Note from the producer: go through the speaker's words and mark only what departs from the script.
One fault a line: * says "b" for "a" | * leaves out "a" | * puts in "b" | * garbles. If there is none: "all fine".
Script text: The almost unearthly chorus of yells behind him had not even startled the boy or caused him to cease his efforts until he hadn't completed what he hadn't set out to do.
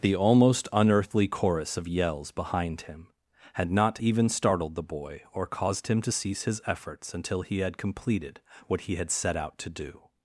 * says "had" for "hadn't"
* says "had" for "hadn't"